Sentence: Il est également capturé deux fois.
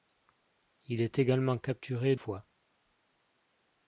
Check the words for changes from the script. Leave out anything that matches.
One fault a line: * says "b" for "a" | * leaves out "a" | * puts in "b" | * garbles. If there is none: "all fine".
* leaves out "deux"